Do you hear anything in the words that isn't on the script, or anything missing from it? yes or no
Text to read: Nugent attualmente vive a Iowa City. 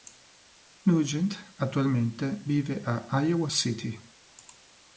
no